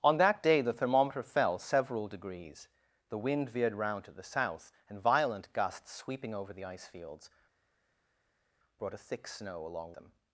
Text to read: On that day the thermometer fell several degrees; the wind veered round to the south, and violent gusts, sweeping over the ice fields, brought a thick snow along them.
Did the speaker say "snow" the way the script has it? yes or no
yes